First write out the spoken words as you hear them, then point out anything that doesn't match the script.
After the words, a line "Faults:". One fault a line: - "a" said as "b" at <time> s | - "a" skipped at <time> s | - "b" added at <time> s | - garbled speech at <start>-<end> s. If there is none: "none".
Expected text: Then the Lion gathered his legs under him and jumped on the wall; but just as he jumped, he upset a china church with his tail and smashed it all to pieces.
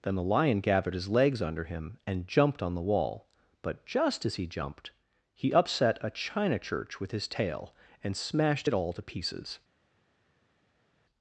Then the Lion gathered his legs under him and jumped on the wall; but just as he jumped, he upset a china church with his tail and smashed it all to pieces.
Faults:
none